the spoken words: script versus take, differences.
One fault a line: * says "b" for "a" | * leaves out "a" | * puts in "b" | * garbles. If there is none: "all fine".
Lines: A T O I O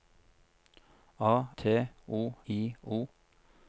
all fine